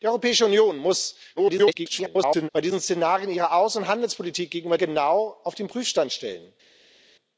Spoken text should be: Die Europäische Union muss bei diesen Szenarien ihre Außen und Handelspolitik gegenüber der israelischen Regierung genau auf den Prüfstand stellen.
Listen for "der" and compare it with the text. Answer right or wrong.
wrong